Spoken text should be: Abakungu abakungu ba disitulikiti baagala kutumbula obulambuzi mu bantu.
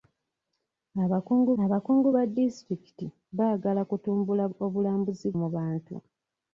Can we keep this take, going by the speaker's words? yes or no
yes